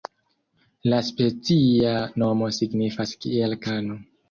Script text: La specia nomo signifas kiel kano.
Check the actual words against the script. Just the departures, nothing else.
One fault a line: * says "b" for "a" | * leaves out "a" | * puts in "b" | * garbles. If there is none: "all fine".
all fine